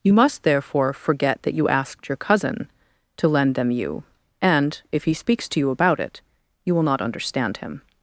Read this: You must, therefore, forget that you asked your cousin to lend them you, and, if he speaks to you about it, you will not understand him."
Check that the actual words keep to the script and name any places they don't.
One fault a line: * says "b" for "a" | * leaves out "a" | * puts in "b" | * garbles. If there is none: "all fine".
all fine